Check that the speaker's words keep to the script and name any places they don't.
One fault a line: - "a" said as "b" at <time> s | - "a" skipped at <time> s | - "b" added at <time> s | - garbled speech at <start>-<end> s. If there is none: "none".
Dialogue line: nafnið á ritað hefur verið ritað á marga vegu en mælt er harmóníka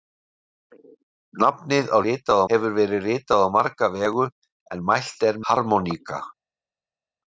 none